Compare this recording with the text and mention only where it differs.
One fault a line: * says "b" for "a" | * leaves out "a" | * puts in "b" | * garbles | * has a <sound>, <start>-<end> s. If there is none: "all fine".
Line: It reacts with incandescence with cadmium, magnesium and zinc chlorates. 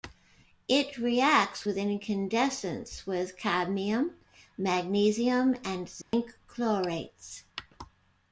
* has a dropout, 6.0-6.1 s